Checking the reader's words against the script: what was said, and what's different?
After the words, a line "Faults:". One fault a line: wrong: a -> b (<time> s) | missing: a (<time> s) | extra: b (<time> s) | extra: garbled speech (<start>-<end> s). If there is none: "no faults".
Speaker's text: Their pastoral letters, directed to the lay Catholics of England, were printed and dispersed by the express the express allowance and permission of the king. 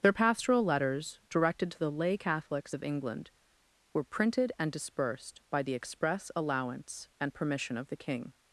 Their pastoral letters, directed to the lay Catholics of England, were printed and dispersed by the express allowance and permission of the king.
Faults:
missing: the express (6.3 s)